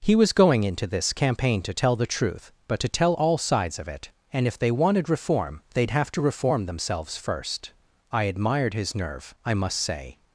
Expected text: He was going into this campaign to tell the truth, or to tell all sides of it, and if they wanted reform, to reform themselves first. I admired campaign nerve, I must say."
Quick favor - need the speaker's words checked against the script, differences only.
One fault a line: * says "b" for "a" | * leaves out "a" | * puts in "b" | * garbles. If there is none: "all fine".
* says "but" for "or"
* puts in "they'd have"
* says "his" for "campaign"